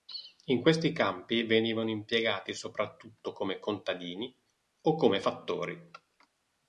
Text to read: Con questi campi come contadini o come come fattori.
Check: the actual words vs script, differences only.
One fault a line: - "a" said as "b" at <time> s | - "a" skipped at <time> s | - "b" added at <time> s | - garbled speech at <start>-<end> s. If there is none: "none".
- "Con" said as "In" at 0.5 s
- "venivano impiegati soprattutto" added at 1.4 s
- "come" skipped at 5.2 s